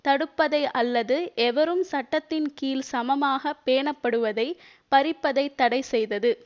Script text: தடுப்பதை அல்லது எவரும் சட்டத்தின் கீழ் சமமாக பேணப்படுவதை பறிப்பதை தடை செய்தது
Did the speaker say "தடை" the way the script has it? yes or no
yes